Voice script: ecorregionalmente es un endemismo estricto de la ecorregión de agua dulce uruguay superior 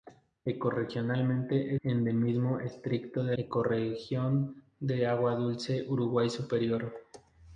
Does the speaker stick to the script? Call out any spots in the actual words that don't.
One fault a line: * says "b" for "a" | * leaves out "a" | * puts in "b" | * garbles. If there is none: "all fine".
* leaves out "es un"
* leaves out "la"